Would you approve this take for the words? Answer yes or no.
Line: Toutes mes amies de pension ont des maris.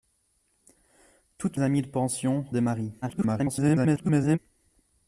no